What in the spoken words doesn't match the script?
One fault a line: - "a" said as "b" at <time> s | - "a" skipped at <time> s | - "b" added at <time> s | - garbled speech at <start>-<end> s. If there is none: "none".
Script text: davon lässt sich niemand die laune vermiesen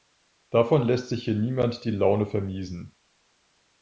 - "hier" added at 1.2 s